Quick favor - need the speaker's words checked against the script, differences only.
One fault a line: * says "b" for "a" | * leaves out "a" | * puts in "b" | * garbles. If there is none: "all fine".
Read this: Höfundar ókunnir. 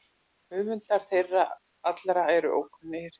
* puts in "þeirra allra eru"